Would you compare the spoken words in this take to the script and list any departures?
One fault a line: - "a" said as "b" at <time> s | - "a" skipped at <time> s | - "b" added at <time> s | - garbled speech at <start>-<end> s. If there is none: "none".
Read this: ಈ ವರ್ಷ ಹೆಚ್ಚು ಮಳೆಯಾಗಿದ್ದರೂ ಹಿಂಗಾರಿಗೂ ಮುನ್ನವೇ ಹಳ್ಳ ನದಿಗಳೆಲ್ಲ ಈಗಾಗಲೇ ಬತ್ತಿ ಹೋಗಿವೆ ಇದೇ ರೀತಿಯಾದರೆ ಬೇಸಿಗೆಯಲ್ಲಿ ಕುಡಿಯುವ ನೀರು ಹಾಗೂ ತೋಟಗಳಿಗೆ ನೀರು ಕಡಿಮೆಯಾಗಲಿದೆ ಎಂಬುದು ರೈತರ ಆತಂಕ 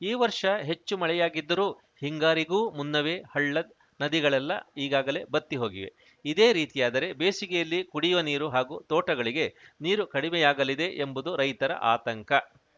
none